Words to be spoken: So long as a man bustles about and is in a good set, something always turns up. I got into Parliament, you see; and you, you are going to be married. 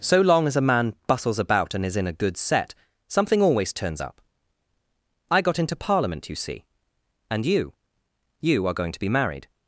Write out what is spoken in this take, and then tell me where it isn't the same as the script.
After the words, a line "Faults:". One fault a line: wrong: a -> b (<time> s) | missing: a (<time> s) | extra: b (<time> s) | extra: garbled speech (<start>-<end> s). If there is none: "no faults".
So long as a man bustles about and is in a good set, something always turns up. I got into Parliament, you see; and you, you are going to be married.
Faults:
no faults